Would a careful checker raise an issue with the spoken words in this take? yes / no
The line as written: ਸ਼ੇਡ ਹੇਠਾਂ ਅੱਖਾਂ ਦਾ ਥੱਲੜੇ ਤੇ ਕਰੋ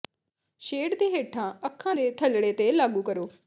yes